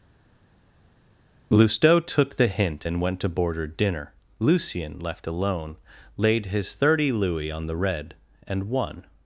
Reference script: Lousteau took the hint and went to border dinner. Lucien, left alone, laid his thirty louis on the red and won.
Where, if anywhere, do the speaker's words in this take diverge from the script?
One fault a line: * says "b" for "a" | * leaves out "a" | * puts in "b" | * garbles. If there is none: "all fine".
all fine